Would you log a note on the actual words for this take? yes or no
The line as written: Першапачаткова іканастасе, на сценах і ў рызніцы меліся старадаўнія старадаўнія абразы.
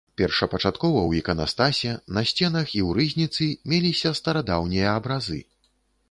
yes